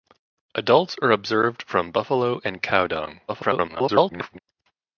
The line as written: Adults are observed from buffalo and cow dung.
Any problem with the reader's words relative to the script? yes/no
yes